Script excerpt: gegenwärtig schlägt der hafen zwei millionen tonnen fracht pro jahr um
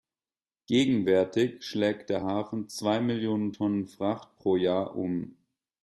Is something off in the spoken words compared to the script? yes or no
no